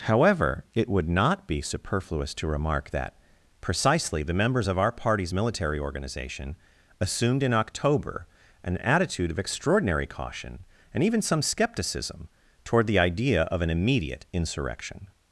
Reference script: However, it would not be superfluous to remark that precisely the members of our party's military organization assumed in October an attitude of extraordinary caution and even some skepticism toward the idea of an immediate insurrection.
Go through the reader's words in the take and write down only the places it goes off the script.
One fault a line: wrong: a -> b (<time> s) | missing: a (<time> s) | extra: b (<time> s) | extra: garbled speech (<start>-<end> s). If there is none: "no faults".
no faults